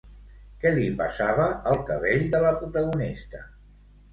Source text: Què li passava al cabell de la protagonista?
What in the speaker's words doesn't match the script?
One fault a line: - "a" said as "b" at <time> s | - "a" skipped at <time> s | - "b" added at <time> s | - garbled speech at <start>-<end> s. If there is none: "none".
none